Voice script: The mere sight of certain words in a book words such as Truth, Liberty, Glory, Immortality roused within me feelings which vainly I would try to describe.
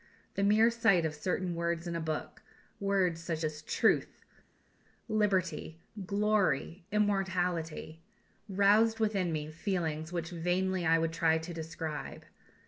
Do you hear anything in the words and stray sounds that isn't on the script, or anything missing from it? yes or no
no